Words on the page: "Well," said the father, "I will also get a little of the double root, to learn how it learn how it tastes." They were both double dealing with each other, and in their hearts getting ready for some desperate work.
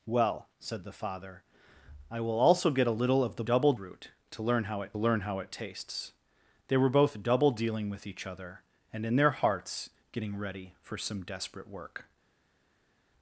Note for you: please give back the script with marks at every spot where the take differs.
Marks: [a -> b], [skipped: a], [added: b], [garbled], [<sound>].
"Well," said the father, "I will also get a little of the double root, to learn how it learn how it tastes." They were both double dealing with each other, and in their hearts getting ready for some desperate work.